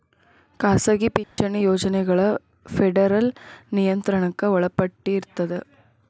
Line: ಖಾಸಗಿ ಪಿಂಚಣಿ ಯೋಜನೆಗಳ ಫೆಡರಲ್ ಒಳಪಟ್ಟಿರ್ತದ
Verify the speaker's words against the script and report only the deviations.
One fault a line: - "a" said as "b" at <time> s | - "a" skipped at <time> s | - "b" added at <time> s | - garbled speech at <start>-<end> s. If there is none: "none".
- "ನಿಯಂತ್ರಣಕ್ಕ" added at 3.7 s